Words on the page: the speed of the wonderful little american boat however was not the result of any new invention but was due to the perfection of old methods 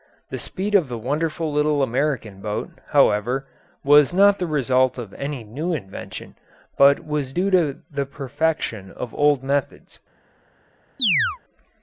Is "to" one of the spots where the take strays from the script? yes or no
no